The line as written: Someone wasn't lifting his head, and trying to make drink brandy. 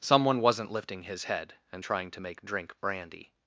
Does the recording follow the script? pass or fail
pass